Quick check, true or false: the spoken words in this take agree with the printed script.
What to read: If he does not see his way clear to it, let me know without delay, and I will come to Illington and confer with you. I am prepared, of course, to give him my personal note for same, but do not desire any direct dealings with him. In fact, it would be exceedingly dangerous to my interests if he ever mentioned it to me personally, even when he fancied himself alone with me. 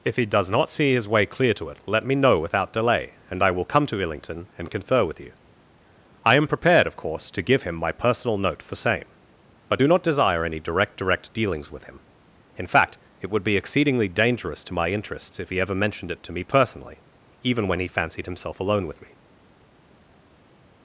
false